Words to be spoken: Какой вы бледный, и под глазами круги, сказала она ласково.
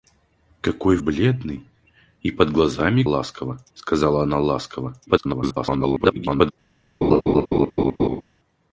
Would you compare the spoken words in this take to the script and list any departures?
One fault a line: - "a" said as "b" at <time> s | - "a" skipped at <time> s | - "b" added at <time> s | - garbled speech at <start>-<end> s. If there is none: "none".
- "вы" skipped at 1.0 s
- "круги" said as "ласково" at 3.0 s
- garbled speech at 5.1-6.5 s